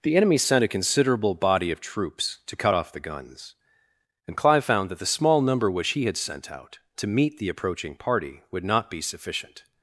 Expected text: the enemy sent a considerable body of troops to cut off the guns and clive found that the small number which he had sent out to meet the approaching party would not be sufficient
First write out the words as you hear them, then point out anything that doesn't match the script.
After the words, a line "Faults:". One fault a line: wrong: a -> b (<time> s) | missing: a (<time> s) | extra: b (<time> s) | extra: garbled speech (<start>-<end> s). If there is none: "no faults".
the enemy sent a considerable body of troops to cut off the guns and clive found that the small number which he had sent out to meet the approaching party would not be sufficient
Faults:
no faults